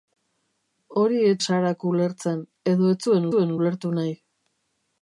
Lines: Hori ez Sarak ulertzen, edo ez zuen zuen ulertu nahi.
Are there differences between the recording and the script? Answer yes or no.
no